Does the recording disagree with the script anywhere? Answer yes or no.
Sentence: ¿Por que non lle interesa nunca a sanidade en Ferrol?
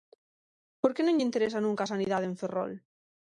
no